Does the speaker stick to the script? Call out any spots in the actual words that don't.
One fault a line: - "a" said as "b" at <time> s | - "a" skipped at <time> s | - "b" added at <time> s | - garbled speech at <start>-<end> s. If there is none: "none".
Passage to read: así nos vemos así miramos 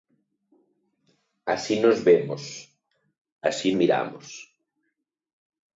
none